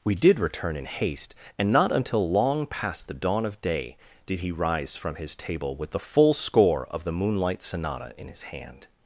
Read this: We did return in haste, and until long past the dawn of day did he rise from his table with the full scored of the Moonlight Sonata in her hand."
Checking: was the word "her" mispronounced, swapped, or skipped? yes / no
yes